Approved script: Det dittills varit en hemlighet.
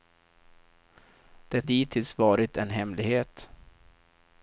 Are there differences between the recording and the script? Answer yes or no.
no